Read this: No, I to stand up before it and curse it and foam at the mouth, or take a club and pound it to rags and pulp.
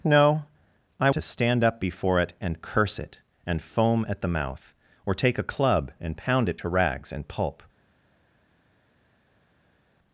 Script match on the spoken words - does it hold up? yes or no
yes